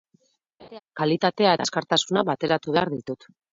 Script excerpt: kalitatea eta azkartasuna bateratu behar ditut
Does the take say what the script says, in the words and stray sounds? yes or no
no